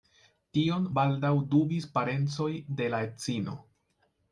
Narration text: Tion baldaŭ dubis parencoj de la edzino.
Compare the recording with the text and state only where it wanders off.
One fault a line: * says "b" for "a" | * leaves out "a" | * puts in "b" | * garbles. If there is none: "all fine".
all fine